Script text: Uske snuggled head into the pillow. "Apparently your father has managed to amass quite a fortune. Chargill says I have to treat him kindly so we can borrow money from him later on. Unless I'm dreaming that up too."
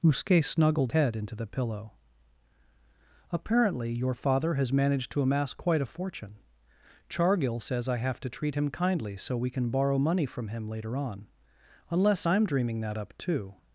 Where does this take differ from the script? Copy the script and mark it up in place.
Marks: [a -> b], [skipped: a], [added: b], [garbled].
Uske snuggled head into the pillow. "Apparently your father has managed to amass quite a fortune. Chargill says I have to treat him kindly so we can borrow money from him later on. Unless I'm dreaming that up too."